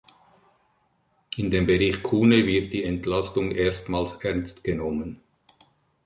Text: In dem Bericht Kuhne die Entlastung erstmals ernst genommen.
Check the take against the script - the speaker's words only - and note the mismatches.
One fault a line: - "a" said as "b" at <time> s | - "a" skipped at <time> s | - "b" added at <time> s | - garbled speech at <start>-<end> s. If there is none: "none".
- "wird" added at 2.5 s